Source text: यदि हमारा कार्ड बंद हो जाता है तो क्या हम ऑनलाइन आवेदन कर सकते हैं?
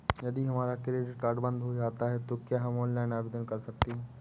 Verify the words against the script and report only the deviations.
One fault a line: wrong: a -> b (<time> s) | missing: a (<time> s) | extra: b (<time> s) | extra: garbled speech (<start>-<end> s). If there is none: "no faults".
extra: क्रेडिट (0.8 s)